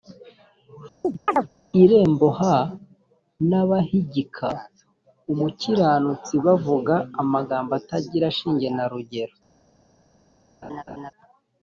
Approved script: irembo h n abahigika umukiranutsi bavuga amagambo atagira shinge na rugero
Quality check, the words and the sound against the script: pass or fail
fail